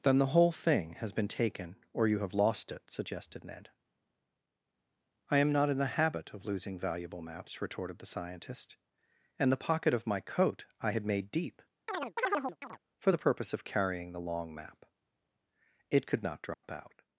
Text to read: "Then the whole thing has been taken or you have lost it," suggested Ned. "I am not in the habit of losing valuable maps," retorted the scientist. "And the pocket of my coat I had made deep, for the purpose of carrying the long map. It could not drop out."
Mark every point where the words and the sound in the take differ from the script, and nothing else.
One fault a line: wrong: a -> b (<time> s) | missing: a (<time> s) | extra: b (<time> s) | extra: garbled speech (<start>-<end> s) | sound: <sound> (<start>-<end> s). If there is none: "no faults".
sound: chirp (11.9-12.8 s)
sound: dropout (16.5-16.6 s)